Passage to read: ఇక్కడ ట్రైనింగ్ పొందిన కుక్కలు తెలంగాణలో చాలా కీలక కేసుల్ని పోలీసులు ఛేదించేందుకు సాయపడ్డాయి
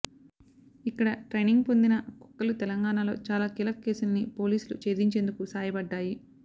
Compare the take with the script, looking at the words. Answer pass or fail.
pass